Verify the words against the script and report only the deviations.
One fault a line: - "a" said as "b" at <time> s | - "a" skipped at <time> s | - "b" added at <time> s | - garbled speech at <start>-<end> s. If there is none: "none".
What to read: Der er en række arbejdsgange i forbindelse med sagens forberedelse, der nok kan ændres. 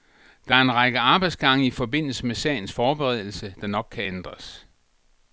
none